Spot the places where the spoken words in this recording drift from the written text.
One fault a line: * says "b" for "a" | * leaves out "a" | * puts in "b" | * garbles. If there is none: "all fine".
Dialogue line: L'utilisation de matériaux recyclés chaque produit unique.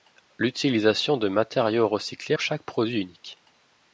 all fine